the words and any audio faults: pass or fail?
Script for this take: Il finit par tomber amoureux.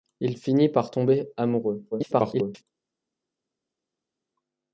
fail